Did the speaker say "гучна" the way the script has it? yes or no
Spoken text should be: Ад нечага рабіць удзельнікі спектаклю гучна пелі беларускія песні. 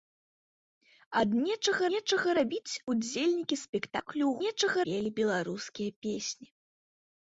no